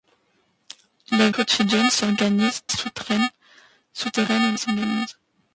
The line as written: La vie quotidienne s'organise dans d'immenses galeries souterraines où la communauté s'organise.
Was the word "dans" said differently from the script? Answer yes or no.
yes